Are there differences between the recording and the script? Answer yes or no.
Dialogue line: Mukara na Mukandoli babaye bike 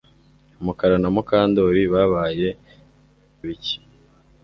no